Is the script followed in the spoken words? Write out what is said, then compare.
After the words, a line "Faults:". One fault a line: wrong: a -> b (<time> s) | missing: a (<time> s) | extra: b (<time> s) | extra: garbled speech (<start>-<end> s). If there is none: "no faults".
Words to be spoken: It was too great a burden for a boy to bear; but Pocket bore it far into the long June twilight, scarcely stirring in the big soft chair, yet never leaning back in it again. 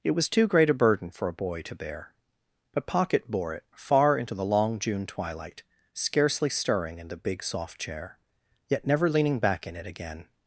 It was too great a burden for a boy to bear; but Pocket bore it far into the long June twilight, scarcely stirring in the big soft chair, yet never leaning back in it again.
Faults:
no faults